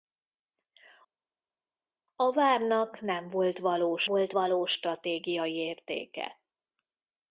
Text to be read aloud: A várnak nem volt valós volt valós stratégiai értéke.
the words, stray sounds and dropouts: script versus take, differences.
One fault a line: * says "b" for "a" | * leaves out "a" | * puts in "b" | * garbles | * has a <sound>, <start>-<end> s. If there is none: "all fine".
all fine